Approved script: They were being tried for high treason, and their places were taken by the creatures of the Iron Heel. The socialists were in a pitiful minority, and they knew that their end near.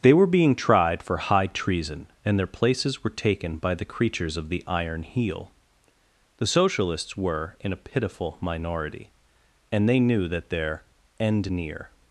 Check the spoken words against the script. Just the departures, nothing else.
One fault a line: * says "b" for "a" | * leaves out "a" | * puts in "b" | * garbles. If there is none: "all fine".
all fine